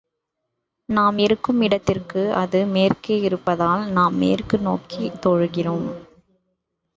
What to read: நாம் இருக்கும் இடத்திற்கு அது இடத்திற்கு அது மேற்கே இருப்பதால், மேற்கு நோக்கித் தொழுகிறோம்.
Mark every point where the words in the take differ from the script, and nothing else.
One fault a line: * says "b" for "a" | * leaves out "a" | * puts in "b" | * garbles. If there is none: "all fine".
* leaves out "இடத்திற்கு அது"
* puts in "நாம்"